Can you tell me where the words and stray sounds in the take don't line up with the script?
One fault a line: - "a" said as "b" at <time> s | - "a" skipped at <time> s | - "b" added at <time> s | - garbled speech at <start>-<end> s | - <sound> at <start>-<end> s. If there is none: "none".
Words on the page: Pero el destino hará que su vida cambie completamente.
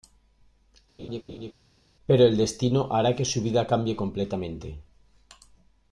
- laugh at 1.0-1.5 s